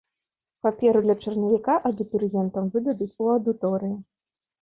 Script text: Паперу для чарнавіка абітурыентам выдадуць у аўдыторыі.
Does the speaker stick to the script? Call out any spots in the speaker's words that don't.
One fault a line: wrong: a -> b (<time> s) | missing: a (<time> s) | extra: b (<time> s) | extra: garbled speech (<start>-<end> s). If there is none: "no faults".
no faults